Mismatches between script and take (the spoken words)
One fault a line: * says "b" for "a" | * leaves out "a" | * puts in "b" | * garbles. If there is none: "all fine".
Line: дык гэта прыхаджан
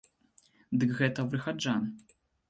all fine